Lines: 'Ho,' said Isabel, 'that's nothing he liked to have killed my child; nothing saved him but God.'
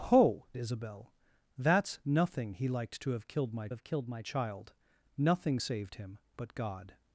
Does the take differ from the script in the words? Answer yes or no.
yes